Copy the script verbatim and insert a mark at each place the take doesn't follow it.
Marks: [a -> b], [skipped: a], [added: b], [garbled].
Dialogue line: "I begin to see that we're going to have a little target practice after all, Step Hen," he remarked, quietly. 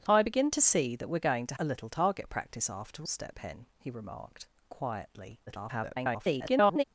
"I begin to see that we're going to [skipped: have] a little target practice after [skipped: all,] Step Hen," he remarked, quietly. [garbled]